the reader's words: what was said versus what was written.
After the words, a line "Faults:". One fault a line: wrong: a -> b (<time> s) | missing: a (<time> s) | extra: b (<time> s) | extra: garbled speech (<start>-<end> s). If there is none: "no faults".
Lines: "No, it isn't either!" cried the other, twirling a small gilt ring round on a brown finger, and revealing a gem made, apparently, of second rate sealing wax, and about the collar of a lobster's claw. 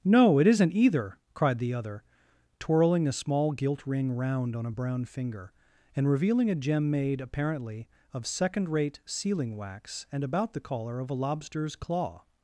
"No, it isn't either!" cried the other, twirling a small gilt ring round on a brown finger, and revealing a gem made, apparently, of second rate sealing wax, and about the collar of a lobster's claw.
Faults:
no faults